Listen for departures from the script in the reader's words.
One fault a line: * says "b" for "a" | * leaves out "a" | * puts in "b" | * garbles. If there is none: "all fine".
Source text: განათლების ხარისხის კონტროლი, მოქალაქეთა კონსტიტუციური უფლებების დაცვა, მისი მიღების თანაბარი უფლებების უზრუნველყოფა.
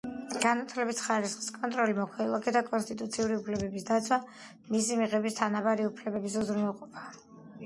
all fine